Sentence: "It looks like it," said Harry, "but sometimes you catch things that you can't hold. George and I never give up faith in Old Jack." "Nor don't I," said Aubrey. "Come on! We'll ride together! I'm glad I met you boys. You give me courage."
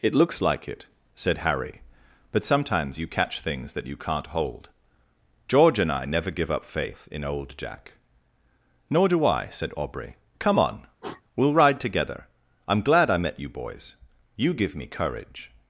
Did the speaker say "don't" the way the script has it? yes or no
no